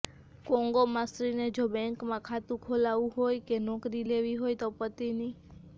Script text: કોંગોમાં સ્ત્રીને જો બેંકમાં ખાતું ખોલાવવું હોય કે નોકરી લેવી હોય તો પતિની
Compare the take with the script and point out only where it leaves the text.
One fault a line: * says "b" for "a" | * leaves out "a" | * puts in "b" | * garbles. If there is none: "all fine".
all fine